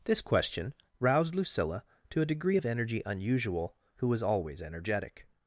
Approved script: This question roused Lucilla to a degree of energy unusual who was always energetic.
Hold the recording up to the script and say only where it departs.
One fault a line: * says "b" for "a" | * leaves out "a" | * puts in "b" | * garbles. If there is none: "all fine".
all fine